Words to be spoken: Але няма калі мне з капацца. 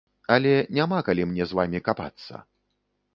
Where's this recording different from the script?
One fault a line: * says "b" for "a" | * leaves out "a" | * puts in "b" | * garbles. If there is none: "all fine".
* puts in "вамі"